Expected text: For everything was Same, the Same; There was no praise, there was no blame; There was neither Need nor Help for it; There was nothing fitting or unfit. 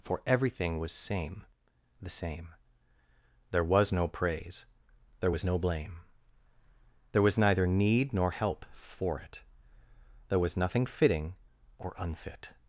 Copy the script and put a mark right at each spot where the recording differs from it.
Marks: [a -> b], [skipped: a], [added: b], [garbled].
For everything was Same, the Same; There was no praise, there was no blame; There was neither Need nor Help for it; There was nothing fitting or unfit.